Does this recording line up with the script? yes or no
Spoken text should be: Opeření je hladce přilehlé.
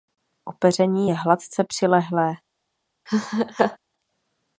yes